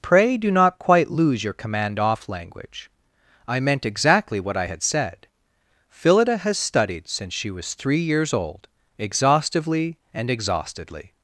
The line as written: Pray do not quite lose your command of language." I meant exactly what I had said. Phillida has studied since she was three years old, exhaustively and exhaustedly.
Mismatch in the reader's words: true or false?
true